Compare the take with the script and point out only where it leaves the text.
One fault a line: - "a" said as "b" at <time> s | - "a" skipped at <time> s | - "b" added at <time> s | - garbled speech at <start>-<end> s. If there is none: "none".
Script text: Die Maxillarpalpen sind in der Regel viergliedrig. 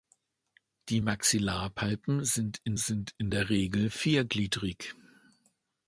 - "sind in" added at 2.8 s